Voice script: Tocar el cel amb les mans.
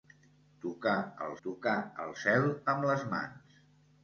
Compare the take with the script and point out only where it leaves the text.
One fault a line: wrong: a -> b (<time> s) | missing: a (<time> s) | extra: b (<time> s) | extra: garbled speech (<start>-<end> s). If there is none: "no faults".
extra: tocar el (1.4 s)